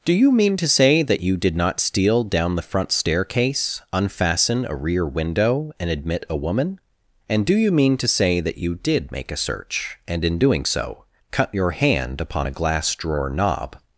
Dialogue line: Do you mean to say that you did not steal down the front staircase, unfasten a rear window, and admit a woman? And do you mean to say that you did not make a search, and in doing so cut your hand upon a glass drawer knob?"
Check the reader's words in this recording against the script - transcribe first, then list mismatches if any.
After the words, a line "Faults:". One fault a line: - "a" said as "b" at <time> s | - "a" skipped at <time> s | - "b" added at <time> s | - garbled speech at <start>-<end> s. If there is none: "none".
Do you mean to say that you did not steal down the front staircase, unfasten a rear window, and admit a woman? And do you mean to say that you did make a search, and in doing so cut your hand upon a glass drawer knob?"
Faults:
- "not" skipped at 9.1 s